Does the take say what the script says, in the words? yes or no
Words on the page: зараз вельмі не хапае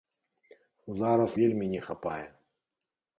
yes